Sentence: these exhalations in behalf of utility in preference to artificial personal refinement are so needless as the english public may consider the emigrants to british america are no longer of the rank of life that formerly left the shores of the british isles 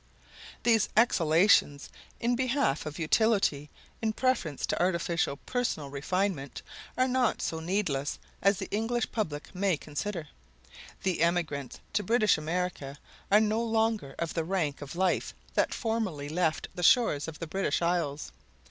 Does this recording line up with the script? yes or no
no